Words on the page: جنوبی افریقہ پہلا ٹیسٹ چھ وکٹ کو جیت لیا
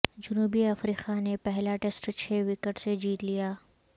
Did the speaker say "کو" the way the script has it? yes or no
no